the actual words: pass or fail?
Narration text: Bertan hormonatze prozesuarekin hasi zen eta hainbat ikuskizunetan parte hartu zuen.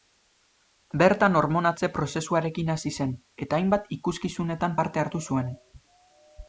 pass